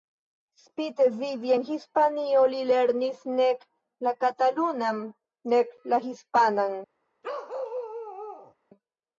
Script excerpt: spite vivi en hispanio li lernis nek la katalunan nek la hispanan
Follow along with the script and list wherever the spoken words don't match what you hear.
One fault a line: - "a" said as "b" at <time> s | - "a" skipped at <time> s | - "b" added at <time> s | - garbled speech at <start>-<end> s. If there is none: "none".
none